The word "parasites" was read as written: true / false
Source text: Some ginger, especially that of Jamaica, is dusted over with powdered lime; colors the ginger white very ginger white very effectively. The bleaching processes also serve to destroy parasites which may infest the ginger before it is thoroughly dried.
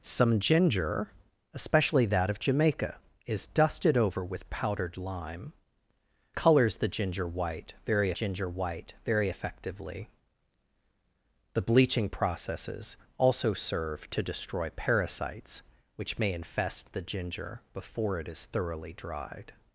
true